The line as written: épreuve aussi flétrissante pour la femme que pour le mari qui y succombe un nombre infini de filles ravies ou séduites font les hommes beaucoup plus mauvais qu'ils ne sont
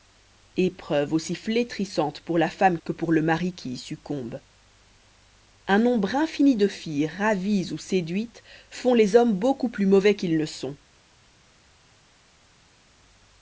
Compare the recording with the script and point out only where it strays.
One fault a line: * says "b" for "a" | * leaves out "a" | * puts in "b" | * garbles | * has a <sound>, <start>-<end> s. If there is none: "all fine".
all fine